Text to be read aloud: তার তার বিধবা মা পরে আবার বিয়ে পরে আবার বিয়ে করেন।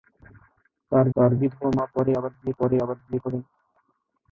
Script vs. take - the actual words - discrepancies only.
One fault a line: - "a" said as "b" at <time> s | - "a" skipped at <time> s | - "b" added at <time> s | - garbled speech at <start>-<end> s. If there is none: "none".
none